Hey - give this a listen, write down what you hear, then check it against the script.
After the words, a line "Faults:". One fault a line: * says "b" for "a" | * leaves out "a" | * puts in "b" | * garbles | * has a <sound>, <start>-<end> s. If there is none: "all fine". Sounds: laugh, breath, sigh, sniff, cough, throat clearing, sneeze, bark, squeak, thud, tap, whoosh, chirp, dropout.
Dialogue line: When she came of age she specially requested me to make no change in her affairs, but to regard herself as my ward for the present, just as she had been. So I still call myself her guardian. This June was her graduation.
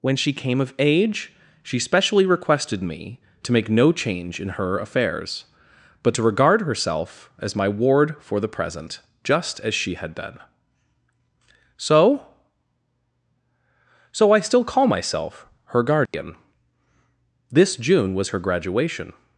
When she came of age she specially requested me to make no change in her affairs, but to regard herself as my ward for the present, just as she had been. So So I still call myself her guardian. This June was her graduation.
Faults:
* puts in "So"
* has a dropout, 16.1-16.1 s